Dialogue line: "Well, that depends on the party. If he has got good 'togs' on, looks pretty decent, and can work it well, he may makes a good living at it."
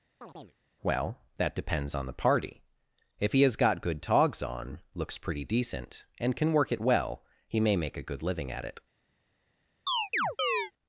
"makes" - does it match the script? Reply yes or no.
no